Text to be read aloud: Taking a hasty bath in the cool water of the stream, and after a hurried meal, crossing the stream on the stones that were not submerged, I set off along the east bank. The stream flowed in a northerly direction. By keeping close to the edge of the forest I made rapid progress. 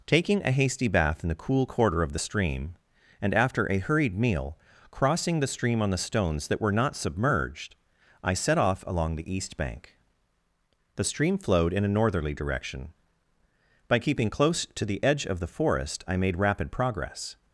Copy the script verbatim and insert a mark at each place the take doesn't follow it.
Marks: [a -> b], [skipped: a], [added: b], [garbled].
Taking a hasty bath in the cool [water -> quarter] of the stream, and after a hurried meal, crossing the stream on the stones that were not submerged, I set off along the east bank. The stream flowed in a northerly direction. By keeping close to the edge of the forest I made rapid progress.